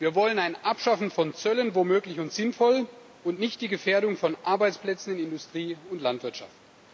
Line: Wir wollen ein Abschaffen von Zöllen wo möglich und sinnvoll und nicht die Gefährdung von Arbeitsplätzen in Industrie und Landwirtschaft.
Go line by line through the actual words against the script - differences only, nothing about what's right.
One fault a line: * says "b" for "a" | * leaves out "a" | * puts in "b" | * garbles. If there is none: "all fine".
all fine